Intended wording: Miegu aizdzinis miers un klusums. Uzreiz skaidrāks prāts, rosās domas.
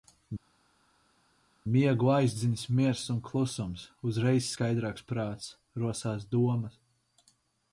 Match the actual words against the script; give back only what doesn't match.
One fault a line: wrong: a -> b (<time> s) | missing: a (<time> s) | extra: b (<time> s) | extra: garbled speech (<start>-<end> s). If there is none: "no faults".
no faults